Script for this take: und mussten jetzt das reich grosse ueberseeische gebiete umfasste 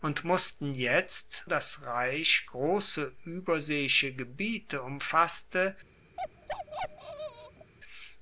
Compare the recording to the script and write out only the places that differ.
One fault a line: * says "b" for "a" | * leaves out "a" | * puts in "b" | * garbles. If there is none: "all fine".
all fine